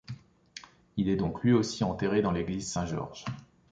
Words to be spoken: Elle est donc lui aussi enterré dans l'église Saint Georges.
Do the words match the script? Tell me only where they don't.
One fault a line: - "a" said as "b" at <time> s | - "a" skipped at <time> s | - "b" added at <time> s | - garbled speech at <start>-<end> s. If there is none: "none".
- "Elle" said as "Il" at 1.0 s